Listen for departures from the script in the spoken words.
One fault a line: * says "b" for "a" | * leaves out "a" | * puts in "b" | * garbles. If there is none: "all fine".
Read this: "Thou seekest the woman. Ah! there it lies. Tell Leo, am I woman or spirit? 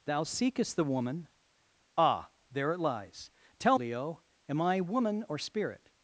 all fine